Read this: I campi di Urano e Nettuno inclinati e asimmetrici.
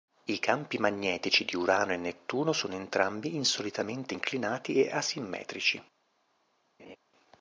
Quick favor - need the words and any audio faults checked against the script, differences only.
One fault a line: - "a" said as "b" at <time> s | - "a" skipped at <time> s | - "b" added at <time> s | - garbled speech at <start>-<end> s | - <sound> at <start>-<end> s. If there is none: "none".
- "magnetici" added at 0.8 s
- "sono entrambi insolitamente" added at 2.5 s
- laugh at 6.8-7.0 s